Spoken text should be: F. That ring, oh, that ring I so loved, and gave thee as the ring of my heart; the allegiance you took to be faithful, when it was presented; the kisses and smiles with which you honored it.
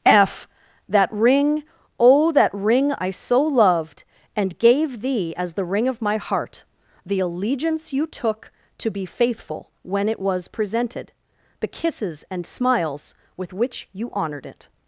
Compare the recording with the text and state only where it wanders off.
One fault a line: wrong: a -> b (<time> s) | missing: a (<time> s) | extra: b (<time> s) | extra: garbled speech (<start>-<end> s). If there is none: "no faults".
no faults